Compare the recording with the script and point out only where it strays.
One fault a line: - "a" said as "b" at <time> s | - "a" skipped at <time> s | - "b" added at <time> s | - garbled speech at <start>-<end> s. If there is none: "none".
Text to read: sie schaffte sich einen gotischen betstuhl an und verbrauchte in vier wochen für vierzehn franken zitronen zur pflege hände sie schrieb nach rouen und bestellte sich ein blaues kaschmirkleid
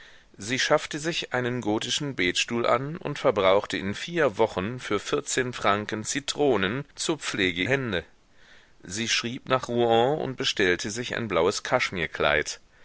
none